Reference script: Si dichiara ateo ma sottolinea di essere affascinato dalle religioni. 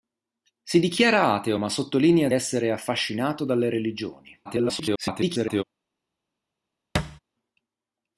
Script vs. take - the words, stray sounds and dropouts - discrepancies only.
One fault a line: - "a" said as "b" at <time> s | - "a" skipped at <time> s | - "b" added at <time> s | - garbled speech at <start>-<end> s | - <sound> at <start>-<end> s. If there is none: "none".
- "di" skipped at 2.3 s
- garbled speech at 4.4-5.6 s
- thud at 6.9-7.2 s